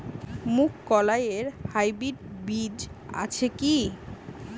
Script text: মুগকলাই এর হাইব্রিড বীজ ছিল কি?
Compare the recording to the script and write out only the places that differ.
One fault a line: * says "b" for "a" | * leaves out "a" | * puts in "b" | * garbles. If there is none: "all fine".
* says "আছে" for "ছিল"